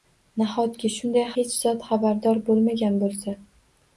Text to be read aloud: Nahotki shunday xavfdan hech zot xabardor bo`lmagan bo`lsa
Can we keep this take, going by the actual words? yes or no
no